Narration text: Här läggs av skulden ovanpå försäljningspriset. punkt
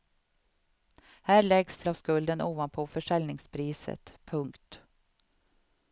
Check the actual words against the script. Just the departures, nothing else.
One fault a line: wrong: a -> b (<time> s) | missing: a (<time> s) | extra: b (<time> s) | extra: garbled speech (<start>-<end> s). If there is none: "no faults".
no faults